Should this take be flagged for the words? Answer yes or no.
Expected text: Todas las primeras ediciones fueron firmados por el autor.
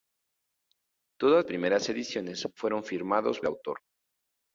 yes